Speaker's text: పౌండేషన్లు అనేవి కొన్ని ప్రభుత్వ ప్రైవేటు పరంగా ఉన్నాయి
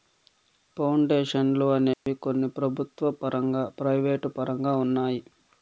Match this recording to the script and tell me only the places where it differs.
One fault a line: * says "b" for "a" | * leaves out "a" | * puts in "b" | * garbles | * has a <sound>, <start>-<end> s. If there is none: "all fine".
* has a dropout, 1.9-2.1 s
* puts in "పరంగా"